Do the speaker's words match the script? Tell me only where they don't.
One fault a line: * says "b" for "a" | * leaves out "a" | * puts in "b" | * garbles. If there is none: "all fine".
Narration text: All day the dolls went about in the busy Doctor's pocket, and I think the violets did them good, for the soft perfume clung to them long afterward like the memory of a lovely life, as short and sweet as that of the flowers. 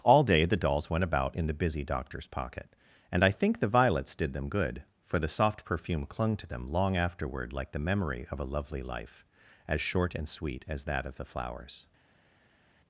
all fine